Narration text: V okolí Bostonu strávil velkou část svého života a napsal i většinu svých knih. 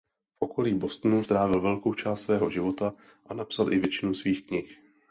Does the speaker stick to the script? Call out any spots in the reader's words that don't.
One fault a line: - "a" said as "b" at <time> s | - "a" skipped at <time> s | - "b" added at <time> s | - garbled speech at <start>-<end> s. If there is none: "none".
none